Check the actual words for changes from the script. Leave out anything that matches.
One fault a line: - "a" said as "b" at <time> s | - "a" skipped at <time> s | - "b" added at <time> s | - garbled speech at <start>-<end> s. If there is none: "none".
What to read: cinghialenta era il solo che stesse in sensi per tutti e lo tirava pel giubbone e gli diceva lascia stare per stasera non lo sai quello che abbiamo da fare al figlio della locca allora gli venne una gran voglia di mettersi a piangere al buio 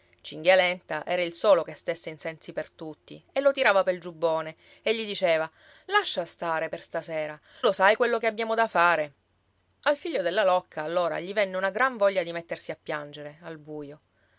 - "non" skipped at 7.4 s